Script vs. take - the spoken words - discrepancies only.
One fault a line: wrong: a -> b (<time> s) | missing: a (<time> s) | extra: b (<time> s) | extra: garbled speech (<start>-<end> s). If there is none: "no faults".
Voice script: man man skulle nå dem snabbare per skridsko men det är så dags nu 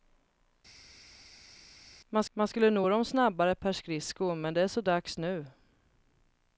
no faults